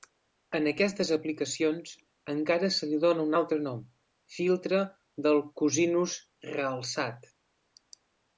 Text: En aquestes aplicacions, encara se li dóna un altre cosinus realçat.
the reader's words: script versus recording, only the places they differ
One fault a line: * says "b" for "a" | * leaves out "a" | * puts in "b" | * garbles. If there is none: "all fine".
* puts in "nom filtre del"